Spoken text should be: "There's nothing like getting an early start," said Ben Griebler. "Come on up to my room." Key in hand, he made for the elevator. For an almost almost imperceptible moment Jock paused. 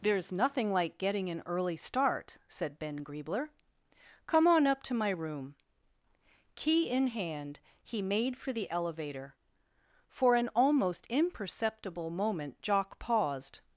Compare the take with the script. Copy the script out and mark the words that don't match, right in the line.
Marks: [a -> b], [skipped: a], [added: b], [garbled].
"There's nothing like getting an early start," said Ben Griebler. "Come on up to my room." Key in hand, he made for the elevator. For an almost [skipped: almost] imperceptible moment Jock paused.